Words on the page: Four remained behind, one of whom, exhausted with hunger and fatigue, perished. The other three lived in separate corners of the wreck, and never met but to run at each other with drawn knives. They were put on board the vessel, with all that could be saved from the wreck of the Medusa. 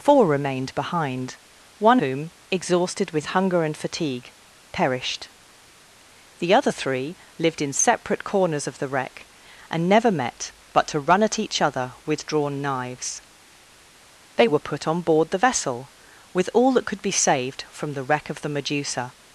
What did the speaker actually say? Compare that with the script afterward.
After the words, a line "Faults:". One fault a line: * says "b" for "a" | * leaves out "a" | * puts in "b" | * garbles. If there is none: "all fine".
Four remained behind, one whom, exhausted with hunger and fatigue, perished. The other three lived in separate corners of the wreck, and never met but to run at each other with drawn knives. They were put on board the vessel, with all that could be saved from the wreck of the Medusa.
Faults:
* leaves out "of"